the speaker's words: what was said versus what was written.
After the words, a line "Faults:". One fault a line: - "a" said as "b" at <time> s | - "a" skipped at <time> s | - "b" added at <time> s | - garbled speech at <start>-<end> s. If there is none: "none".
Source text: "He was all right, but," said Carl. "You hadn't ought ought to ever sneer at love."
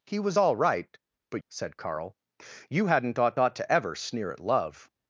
"He was all right, but," said Carl. "You hadn't ought ought to ever sneer at love."
Faults:
none